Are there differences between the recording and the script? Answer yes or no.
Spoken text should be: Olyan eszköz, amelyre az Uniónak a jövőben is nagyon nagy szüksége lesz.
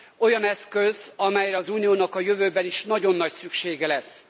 no